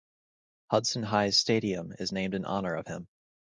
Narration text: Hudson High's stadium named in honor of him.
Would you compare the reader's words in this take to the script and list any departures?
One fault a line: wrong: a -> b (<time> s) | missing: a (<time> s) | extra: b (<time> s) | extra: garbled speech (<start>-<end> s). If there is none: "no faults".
extra: is (2.0 s)